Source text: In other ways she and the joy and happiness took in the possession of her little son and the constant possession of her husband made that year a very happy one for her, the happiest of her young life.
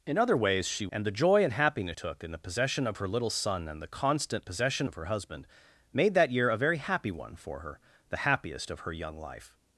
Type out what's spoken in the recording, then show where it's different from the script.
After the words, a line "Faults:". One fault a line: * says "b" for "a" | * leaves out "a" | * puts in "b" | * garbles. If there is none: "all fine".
In other ways she and the joy and happiness took in the possession of her little son and the constant possession of her husband made that year a very happy one for her, the happiest of her young life.
Faults:
all fine